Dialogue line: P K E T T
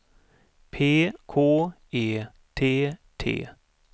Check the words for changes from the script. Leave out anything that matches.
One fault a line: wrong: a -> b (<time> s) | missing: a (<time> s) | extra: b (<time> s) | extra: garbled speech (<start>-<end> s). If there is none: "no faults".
no faults